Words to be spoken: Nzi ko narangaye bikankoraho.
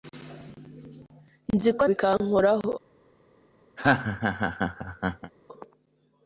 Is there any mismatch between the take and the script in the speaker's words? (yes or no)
yes